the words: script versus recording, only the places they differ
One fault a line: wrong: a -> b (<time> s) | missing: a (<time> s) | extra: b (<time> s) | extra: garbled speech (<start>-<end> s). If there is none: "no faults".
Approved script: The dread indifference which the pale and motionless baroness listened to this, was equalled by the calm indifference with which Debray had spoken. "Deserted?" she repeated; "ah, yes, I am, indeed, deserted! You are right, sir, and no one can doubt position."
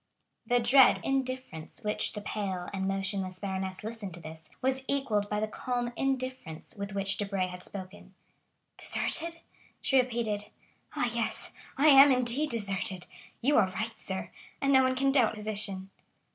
no faults